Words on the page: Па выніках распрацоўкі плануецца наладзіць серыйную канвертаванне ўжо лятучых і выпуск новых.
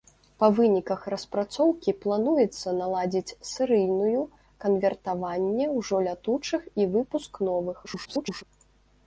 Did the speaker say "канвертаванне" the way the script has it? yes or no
yes